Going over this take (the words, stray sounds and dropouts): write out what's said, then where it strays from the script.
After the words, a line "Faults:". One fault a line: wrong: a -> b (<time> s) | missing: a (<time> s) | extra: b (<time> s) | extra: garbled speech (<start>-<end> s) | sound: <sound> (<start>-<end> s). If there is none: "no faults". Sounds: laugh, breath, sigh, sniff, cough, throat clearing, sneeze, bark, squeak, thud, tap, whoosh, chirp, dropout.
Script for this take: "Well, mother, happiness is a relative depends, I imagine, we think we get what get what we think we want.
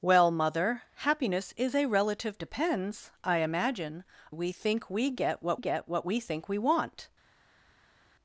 "Well, mother, happiness is a relative depends, I imagine, we think we get what get what we think we want.
Faults:
no faults